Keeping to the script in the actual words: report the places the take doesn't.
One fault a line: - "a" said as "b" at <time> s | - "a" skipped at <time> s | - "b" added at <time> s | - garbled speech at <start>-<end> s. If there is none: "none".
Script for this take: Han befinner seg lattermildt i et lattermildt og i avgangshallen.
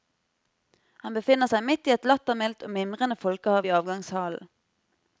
- "lattermildt" said as "midt" at 1.7 s
- "mimrende folkehav" added at 2.8 s